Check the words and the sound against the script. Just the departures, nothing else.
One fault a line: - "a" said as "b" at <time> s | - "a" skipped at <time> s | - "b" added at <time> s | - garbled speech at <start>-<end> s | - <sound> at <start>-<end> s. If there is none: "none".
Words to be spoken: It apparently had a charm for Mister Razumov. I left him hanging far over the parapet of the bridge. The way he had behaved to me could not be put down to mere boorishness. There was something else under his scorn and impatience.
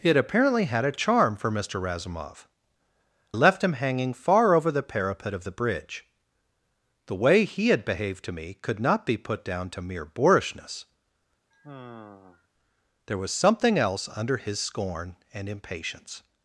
- "I" skipped at 2.5 s
- sigh at 11.5-12.5 s